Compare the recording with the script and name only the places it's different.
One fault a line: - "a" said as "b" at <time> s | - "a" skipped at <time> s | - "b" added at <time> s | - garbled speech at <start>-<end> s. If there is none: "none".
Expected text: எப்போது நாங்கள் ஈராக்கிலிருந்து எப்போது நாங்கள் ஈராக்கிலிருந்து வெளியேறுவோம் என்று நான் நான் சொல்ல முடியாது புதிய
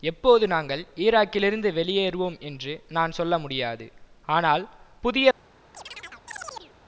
- "எப்போது நாங்கள் ஈராக்கிலிருந்து" skipped at 1.7 s
- "நான்" skipped at 3.2 s
- "ஆனால்" added at 4.3 s